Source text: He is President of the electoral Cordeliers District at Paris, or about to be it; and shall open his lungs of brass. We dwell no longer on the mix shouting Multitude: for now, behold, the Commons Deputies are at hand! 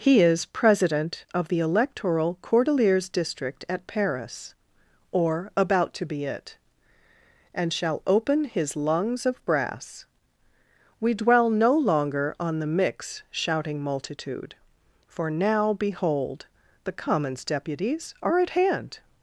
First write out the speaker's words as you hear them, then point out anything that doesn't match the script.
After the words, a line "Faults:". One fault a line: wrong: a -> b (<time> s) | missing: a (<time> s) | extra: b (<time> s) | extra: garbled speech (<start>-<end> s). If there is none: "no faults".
He is President of the electoral Cordeliers District at Paris, or about to be it; and shall open his lungs of brass. We dwell no longer on the mix shouting Multitude: for now, behold, the Commons Deputies are at hand!
Faults:
no faults